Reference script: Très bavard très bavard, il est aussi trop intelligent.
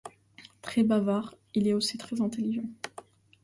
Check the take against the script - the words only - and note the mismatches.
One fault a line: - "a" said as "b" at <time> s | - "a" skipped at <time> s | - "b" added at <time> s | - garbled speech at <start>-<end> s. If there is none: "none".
- "très bavard" skipped at 1.4 s
- "trop" said as "très" at 2.0 s